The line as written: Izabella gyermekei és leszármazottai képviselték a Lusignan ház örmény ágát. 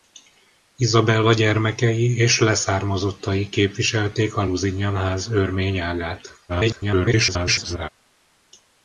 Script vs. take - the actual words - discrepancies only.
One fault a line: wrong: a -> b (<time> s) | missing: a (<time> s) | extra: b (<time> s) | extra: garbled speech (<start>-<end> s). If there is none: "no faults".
extra: garbled speech (6.5-7.9 s)